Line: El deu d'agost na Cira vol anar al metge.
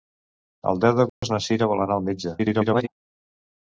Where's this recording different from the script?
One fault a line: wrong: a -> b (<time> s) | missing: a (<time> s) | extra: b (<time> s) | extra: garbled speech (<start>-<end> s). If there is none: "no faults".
extra: garbled speech (2.4-2.9 s)